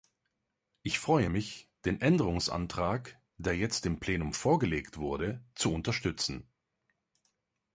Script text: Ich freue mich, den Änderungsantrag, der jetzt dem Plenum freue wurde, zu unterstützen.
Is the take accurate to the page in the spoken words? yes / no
no